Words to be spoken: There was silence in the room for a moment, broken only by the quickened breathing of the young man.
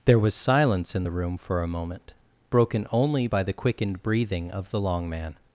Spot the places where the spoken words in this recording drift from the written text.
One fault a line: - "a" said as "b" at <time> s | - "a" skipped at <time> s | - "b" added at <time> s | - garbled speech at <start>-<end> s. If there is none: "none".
- "young" said as "long" at 4.8 s